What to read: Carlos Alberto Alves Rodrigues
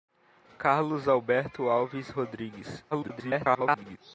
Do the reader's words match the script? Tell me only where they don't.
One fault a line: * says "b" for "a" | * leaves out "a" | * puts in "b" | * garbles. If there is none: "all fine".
* garbles